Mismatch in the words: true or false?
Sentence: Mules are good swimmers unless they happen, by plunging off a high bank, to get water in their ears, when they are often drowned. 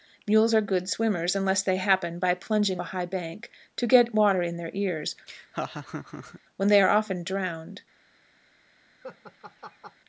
true